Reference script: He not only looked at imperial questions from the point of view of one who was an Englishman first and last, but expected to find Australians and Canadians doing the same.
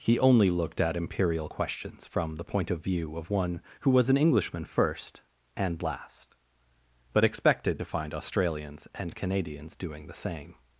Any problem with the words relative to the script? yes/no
yes